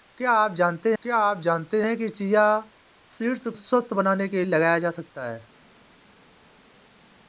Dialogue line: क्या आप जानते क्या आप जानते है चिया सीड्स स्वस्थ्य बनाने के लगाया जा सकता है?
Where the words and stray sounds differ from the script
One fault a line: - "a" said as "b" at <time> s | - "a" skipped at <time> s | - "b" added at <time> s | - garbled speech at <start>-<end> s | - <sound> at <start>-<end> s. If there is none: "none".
none